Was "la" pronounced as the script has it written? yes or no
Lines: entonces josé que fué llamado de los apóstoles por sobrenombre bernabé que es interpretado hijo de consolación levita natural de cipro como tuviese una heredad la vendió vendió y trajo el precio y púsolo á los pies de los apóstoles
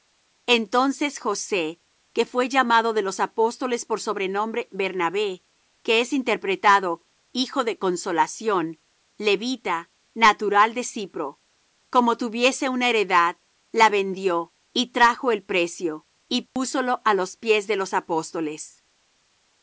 yes